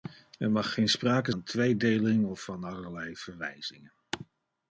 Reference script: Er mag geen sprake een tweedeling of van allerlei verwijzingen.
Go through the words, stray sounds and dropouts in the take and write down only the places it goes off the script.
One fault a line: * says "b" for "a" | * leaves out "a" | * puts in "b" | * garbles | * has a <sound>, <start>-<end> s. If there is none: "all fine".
all fine